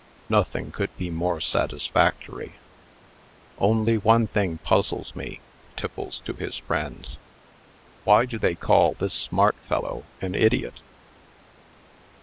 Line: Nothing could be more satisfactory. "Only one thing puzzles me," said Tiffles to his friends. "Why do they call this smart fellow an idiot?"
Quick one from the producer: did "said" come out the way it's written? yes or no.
no